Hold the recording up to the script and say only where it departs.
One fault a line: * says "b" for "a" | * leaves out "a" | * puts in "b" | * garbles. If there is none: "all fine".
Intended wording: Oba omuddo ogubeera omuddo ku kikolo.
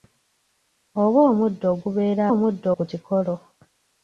all fine